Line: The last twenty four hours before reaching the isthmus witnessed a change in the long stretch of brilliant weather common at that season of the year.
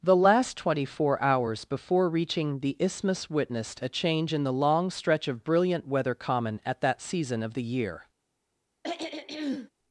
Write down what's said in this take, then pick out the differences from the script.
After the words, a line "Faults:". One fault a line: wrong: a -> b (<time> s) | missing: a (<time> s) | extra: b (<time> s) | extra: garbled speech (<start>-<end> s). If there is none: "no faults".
The last twenty four hours before reaching the isthmus witnessed a change in the long stretch of brilliant weather common at that season of the year.
Faults:
no faults